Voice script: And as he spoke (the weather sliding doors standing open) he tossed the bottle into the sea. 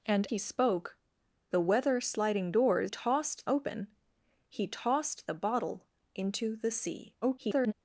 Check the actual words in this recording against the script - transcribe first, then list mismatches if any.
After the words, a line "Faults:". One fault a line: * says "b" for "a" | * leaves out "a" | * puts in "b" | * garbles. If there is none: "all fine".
And he spoke (the weather sliding doors tossed open) he tossed the bottle into the sea. [garbled]
Faults:
* leaves out "as"
* says "tossed" for "standing"
* garbles